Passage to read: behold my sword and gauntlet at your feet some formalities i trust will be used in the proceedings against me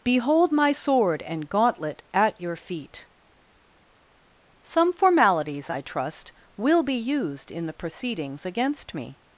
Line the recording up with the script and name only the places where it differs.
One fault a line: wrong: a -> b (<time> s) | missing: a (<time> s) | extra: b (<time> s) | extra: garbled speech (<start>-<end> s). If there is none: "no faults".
no faults